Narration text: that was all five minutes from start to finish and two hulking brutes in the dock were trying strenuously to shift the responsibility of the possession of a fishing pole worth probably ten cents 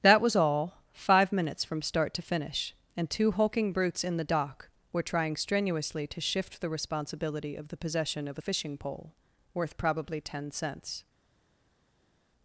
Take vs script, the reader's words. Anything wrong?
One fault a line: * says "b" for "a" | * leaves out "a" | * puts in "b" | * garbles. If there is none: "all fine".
all fine